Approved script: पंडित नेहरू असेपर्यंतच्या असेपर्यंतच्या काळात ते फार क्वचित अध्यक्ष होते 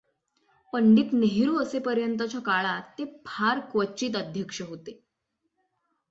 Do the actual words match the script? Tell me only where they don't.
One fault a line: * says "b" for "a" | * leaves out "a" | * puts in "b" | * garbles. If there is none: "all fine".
* leaves out "असेपर्यंतच्या"